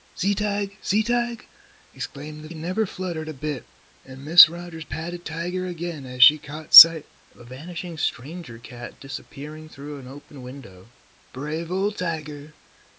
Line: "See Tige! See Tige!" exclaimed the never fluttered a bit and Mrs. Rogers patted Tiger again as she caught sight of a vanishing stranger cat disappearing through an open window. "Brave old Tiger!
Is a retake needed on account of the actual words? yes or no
no